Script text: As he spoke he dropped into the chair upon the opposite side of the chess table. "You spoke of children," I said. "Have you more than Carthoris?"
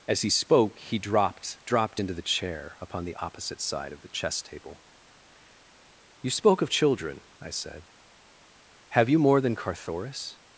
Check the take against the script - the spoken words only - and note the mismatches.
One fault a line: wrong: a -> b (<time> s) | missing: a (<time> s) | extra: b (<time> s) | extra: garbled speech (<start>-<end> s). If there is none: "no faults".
extra: dropped (1.6 s)